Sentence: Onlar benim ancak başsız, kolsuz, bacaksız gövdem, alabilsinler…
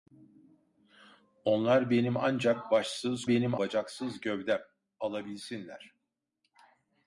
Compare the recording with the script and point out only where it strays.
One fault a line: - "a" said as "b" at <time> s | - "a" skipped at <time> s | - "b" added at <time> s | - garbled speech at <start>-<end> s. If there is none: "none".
- "kolsuz" said as "benim" at 3.3 s